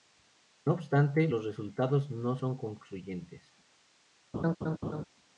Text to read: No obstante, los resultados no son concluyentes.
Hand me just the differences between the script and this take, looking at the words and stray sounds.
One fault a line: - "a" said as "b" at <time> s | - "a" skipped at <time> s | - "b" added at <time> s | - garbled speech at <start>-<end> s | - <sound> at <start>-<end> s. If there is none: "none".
- laugh at 4.3-5.0 s